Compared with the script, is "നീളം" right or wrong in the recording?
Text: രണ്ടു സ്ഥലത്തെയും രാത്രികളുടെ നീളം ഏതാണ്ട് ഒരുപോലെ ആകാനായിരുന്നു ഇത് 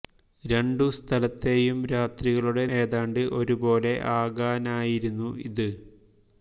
wrong